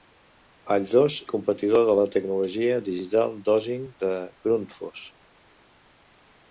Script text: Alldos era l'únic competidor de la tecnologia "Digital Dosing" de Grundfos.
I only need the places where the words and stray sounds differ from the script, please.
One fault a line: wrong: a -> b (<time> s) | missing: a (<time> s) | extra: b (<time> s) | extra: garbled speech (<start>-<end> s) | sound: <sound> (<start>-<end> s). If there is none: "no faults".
missing: era l'únic (1.2 s)